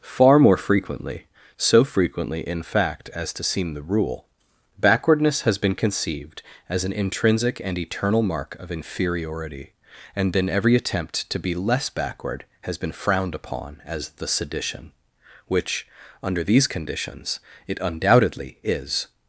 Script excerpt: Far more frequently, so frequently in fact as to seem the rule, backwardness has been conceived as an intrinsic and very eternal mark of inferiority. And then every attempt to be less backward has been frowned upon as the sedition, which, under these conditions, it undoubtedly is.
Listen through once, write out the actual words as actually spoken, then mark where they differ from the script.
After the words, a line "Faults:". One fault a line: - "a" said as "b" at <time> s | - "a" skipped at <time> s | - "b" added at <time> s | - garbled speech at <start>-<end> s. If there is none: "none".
Far more frequently, so frequently in fact as to seem the rule, backwardness has been conceived as an intrinsic and eternal mark of inferiority. And then every attempt to be less backward has been frowned upon as the sedition, which, under these conditions, it undoubtedly is.
Faults:
- "very" skipped at 7.8 s